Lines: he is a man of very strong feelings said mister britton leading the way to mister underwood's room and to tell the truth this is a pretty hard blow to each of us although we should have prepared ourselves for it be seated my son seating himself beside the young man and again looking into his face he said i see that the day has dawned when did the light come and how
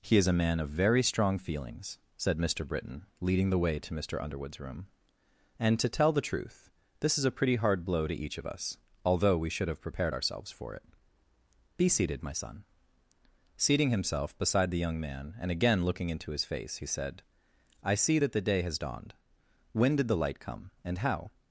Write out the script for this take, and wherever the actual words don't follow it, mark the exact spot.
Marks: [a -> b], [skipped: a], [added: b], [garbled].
he is a man of very strong feelings said mister britton leading the way to mister underwood's room and to tell the truth this is a pretty hard blow to each of us although we should have prepared ourselves for it be seated my son seating himself beside the young man and again looking into his face he said i see that the day has dawned when did the light come and how